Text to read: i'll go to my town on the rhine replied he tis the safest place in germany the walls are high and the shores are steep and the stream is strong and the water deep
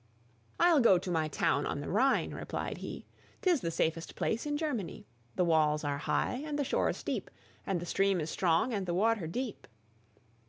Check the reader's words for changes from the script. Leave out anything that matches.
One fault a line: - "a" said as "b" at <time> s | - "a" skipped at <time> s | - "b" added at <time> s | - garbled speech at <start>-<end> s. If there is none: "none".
- "are" skipped at 7.0 s